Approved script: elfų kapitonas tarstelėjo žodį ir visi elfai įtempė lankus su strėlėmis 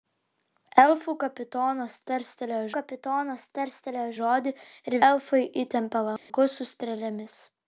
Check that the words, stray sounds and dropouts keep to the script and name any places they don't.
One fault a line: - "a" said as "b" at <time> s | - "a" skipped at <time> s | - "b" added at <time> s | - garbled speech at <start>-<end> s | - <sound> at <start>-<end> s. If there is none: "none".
- "kapitonas tarstelėjo" added at 2.8 s
- "visi" skipped at 5.0 s
- dropout at 6.2-6.3 s